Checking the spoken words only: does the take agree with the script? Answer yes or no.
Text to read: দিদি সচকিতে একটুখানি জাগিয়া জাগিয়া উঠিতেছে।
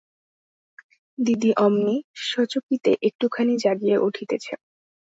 no